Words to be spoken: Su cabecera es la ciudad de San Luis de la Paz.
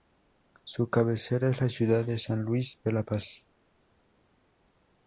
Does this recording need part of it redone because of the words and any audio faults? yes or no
no